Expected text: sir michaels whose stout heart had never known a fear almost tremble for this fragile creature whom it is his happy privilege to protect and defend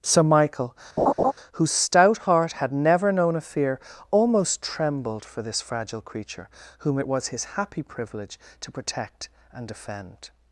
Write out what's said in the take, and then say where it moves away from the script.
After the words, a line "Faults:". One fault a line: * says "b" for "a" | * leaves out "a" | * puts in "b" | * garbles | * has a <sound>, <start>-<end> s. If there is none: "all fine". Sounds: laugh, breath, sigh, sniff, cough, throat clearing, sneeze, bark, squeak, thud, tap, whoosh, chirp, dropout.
sir michael whose stout heart had never known a fear almost trembled for this fragile creature whom it was his happy privilege to protect and defend
Faults:
* says "michael" for "michaels"
* has a laugh, 1.0-1.3 s
* says "trembled" for "tremble"
* says "was" for "is"